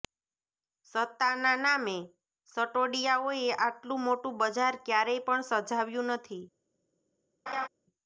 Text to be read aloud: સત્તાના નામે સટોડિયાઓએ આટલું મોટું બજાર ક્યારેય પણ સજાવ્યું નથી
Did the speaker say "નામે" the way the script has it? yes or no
yes